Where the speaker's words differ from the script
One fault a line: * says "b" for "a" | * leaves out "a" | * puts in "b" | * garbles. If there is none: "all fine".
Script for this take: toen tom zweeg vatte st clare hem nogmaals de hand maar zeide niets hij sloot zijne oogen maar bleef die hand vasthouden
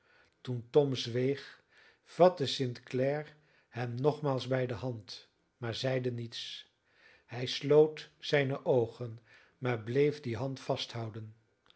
* puts in "bij"